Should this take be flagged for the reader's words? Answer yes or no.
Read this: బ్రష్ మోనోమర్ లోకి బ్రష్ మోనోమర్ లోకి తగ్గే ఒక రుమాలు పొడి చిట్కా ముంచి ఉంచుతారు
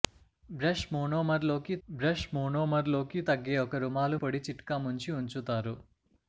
no